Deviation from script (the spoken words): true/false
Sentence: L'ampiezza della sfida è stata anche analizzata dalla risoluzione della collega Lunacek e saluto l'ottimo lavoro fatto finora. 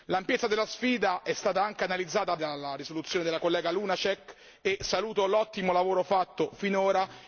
false